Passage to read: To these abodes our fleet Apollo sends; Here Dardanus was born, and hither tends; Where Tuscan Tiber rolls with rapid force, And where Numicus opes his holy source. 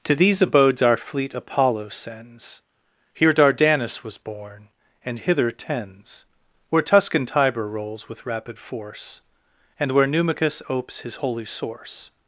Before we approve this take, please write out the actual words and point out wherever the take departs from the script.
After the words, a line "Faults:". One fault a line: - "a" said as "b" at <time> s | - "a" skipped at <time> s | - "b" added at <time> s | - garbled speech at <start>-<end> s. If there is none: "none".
To these abodes our fleet Apollo sends; Here Dardanus was born, and hither tends; Where Tuscan Tiber rolls with rapid force, And where Numicus opes his holy source.
Faults:
none